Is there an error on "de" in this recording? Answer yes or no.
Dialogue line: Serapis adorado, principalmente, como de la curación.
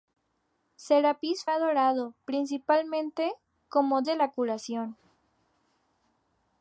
no